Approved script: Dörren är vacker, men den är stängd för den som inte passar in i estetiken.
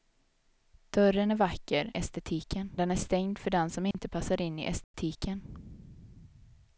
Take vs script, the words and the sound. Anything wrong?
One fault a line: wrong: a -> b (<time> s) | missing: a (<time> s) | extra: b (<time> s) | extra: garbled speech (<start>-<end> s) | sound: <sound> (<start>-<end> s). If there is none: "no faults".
wrong: men -> estetiken (1.9 s)
sound: dropout (3.9-3.9 s)
sound: dropout (4.8-4.9 s)